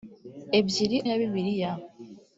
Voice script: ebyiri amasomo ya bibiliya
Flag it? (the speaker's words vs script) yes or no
yes